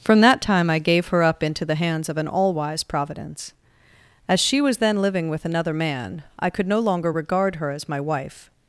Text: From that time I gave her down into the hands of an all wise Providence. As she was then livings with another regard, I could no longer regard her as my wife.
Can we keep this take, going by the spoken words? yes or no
no